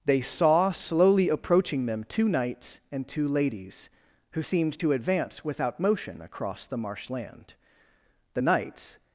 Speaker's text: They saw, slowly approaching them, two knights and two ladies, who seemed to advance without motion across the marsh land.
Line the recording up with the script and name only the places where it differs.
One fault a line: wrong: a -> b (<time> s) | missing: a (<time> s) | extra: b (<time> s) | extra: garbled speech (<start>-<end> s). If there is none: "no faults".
extra: The knights (8.3 s)